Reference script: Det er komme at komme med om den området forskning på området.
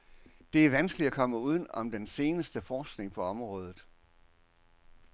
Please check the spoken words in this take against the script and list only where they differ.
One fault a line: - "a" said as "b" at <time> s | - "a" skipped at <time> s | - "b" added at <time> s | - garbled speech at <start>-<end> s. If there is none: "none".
- "komme" said as "vanskeligt" at 0.7 s
- "med" said as "uden" at 1.4 s
- "området" said as "seneste" at 2.1 s